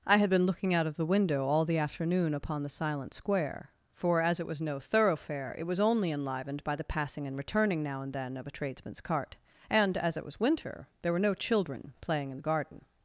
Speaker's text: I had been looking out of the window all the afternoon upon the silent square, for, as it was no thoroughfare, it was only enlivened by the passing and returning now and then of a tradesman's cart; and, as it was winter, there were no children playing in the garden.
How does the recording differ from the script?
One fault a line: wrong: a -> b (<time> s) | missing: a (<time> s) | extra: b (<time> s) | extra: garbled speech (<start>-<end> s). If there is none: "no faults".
no faults